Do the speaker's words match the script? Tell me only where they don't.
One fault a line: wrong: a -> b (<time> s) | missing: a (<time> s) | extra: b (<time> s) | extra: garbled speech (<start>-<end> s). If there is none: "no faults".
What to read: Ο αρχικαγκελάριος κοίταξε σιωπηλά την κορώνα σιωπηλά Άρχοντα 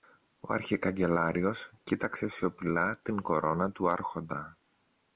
wrong: σιωπηλά -> του (3.7 s)